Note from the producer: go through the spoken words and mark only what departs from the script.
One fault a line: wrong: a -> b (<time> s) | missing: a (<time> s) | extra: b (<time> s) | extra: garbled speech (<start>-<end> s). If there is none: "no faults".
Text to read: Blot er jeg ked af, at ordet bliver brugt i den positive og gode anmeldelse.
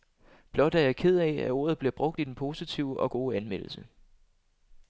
no faults